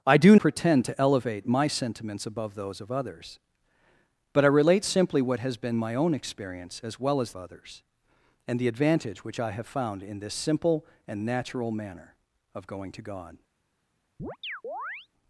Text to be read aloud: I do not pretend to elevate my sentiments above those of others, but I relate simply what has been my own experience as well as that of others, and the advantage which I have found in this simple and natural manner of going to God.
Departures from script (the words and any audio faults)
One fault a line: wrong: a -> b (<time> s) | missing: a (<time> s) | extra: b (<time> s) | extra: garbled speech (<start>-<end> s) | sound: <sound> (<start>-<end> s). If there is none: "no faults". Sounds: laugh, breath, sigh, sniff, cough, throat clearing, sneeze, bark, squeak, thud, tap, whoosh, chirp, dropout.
missing: not (0.3 s)
missing: that of (7.3 s)
sound: chirp (14.2-15.1 s)